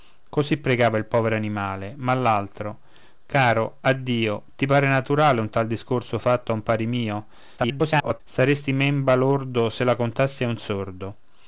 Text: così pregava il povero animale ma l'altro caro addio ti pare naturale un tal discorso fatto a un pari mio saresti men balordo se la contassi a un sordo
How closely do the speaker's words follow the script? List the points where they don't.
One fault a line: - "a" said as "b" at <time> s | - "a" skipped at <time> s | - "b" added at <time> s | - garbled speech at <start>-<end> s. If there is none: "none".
- garbled speech at 7.6-8.2 s